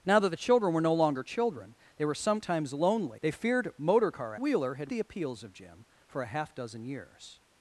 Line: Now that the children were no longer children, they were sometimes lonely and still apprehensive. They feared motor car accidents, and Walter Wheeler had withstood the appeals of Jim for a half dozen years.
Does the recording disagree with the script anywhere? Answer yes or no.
yes